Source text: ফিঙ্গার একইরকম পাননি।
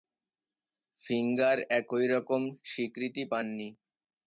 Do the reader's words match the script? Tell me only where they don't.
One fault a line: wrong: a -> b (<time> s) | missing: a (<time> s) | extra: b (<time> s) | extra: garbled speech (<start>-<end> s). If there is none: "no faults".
extra: স্বীকৃতি (2.6 s)